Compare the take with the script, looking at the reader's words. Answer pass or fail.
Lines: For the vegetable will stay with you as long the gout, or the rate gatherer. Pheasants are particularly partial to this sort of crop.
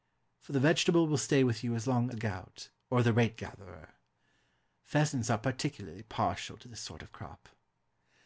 pass